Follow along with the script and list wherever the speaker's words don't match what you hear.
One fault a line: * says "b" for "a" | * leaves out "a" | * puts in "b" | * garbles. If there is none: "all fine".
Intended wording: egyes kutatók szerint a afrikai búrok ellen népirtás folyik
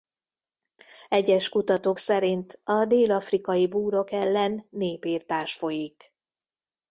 * puts in "dél"